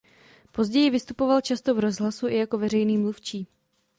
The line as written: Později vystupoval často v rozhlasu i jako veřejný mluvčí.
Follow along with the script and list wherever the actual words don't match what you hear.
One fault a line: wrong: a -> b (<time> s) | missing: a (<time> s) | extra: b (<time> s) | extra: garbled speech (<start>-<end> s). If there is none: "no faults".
no faults